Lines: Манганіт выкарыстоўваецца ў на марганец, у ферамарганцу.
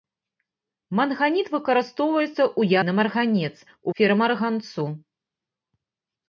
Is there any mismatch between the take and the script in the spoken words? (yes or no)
no